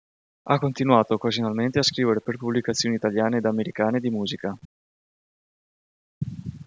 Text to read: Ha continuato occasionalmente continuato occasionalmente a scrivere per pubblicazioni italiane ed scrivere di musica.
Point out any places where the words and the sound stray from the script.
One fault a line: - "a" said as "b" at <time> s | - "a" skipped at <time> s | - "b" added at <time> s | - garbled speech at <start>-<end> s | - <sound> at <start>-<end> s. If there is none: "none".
- "continuato occasionalmente" skipped at 1.8 s
- "scrivere" said as "americane" at 3.5 s